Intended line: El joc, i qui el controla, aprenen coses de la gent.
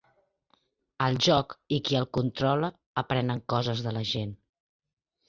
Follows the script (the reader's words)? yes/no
yes